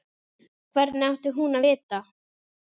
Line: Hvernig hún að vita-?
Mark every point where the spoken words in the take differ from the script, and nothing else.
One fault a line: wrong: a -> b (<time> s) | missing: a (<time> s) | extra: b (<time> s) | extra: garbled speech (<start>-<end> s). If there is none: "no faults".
extra: átti (1.1 s)